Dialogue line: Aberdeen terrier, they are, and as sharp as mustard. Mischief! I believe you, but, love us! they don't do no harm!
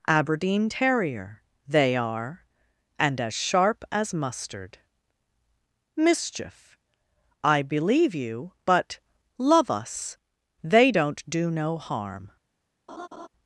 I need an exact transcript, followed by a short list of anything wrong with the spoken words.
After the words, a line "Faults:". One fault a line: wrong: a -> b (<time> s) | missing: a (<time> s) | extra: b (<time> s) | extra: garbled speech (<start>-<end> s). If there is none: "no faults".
Aberdeen terrier, they are, and as sharp as mustard. Mischief! I believe you, but, love us! they don't do no harm!
Faults:
no faults